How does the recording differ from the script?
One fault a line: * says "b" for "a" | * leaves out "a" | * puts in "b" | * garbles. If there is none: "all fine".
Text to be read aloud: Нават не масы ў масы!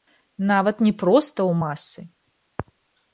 * says "проста" for "масы"